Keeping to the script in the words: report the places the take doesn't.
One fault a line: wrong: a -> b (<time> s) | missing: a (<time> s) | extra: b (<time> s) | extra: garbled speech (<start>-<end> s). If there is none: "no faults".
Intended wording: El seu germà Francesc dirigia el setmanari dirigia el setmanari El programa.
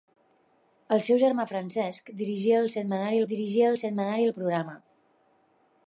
no faults